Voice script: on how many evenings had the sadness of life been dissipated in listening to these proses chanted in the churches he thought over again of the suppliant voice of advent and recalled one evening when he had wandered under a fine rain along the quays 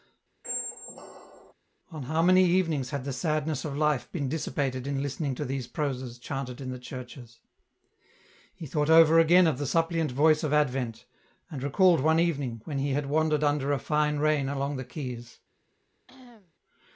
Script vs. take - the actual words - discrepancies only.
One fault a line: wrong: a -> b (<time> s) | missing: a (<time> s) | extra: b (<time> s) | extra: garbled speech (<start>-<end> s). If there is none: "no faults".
no faults